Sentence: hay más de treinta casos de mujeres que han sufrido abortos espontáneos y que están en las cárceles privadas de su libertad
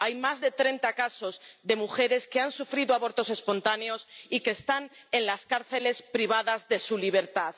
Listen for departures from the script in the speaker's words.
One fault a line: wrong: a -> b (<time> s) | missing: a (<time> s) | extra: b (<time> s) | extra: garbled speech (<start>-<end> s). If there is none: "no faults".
no faults